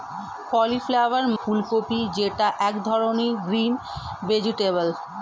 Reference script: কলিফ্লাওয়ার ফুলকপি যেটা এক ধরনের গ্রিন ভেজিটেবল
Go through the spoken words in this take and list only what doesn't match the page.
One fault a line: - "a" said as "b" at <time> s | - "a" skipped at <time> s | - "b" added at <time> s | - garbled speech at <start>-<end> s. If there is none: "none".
none